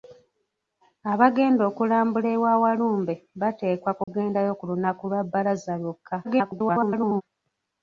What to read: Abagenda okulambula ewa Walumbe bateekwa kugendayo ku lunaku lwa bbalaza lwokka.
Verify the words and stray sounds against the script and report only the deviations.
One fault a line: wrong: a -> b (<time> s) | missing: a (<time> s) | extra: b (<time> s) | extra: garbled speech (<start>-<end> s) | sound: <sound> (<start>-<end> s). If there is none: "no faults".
sound: dropout (4.0-4.1 s)
extra: garbled speech (6.2-7.2 s)